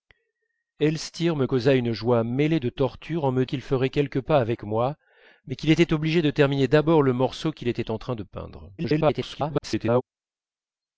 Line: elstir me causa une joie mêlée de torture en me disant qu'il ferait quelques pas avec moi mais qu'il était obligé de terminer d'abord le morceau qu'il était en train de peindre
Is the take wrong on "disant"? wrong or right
wrong